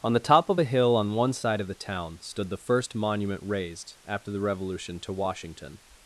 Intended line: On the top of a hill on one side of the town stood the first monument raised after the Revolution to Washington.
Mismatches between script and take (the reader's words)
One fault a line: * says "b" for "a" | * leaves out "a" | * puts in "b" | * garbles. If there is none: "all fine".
all fine